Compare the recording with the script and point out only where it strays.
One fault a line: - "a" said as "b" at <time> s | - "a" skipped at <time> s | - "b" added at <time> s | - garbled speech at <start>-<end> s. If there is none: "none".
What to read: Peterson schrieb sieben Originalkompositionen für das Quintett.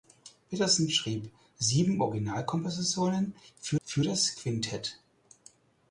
- "für" added at 3.8 s